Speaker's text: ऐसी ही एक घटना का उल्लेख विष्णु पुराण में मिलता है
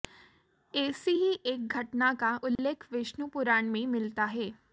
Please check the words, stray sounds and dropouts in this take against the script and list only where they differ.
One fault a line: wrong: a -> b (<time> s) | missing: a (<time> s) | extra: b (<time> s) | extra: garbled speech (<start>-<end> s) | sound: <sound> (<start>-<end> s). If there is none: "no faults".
sound: dropout (2.6-2.6 s)